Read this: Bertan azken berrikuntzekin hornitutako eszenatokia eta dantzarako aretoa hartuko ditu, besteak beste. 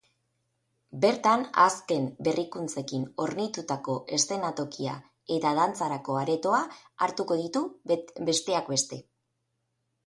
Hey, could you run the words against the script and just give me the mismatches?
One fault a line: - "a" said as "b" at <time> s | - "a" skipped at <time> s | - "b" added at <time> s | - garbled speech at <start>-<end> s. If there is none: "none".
none